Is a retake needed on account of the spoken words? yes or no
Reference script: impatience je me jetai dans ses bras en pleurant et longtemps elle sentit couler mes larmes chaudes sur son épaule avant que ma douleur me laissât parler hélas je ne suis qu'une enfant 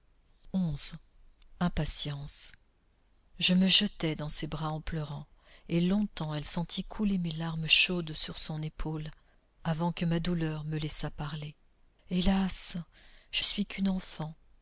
yes